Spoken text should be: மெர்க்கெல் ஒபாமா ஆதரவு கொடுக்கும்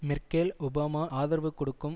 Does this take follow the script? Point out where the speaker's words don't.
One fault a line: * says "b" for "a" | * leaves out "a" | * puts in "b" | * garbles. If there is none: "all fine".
all fine